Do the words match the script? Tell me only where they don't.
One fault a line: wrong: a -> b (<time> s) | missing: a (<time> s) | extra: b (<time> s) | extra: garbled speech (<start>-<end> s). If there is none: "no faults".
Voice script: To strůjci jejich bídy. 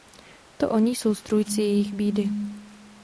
extra: oni jsou (0.7 s)